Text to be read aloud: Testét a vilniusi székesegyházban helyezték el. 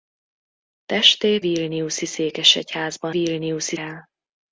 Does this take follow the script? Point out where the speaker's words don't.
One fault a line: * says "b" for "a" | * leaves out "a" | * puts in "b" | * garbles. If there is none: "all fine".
* leaves out "a"
* says "vilniusi" for "helyezték"